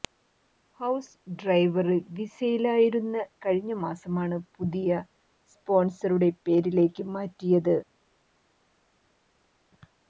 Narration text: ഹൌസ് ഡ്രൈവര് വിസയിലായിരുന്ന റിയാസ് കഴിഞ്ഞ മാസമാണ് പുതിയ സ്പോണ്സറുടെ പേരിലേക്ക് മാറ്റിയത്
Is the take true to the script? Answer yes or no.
no